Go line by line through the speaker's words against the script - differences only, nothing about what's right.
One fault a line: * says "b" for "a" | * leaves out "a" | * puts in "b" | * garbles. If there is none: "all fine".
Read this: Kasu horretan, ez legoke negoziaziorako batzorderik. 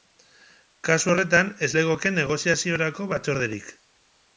all fine